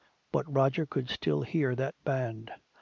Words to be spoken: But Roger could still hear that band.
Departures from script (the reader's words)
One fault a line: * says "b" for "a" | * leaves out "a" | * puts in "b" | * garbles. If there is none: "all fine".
all fine